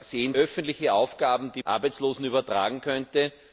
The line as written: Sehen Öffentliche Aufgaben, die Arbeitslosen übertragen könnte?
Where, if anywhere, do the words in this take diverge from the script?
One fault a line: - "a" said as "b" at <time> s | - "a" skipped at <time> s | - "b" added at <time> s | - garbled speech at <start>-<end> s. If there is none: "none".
none